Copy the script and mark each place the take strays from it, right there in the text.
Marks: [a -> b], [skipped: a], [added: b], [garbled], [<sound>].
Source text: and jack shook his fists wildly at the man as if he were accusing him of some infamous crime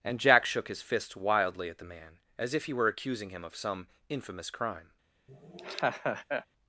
and jack shook his [fists -> fist] wildly at the man as if he were accusing him of some infamous crime [laugh]